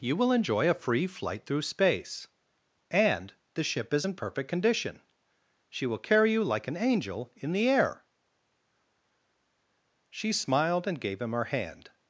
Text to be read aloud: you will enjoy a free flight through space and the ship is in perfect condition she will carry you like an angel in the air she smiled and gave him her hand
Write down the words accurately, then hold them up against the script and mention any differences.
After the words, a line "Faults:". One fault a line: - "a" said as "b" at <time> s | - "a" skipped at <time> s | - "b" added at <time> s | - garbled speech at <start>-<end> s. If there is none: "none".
you will enjoy a free flight through space and the ship is in perfect condition she will carry you like an angel in the air she smiled and gave him her hand
Faults:
none